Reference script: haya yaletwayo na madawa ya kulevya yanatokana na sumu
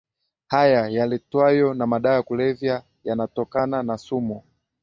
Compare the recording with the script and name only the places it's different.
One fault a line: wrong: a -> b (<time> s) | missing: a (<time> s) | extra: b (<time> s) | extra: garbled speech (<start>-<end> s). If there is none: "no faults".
no faults